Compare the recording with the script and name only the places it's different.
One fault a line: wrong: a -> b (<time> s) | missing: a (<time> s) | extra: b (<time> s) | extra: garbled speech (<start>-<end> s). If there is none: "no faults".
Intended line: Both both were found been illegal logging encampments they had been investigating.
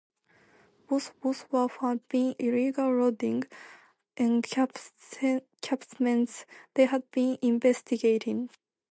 no faults